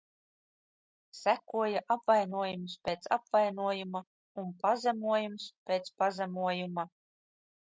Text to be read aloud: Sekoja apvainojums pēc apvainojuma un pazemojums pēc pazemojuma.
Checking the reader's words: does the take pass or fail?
pass